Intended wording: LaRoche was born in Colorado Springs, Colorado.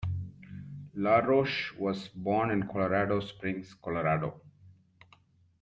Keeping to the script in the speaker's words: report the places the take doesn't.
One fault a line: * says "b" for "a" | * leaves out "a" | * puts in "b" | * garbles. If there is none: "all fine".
all fine